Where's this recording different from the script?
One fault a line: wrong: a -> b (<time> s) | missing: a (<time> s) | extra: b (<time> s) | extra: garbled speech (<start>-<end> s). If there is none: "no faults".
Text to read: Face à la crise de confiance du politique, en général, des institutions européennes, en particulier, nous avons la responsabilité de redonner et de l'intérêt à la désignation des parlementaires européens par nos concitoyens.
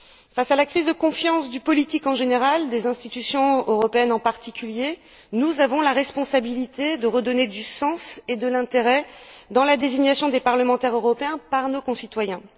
extra: du sens (7.5 s)